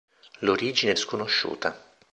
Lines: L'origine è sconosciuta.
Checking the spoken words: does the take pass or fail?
pass